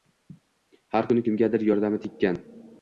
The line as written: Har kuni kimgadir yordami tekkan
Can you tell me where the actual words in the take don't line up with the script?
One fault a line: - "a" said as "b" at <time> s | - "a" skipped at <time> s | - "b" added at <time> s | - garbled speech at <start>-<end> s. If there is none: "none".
none